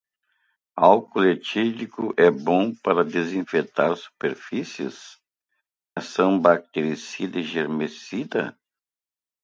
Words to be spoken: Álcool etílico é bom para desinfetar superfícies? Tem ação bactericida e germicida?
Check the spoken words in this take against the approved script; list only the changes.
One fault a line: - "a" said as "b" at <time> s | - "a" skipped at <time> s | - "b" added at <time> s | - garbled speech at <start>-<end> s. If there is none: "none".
- "Tem" skipped at 5.2 s